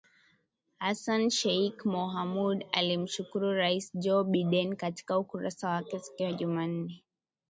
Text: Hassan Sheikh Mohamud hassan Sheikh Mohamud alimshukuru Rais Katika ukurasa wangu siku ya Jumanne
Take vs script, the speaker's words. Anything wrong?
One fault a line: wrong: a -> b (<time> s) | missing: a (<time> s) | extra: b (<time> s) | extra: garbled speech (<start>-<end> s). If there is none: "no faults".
wrong: hassan Sheikh Mohamud alimshukuru Rais -> alimshukuru Rais Joe Biden (2.7 s)
wrong: wangu -> wake (5.7 s)